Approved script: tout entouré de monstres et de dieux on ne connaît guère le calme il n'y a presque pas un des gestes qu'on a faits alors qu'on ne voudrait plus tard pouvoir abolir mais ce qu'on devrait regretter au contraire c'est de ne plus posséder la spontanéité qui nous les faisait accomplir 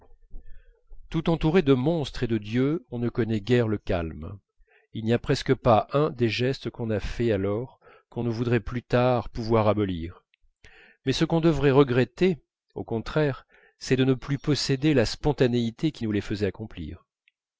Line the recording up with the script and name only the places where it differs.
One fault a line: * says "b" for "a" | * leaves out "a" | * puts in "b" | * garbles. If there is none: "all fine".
all fine